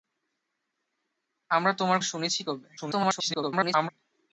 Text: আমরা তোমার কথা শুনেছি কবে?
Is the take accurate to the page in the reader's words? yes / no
no